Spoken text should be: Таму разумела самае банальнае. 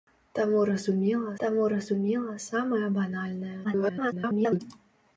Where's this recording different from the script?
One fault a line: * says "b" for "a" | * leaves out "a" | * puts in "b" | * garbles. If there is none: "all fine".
* puts in "таму разумела"
* garbles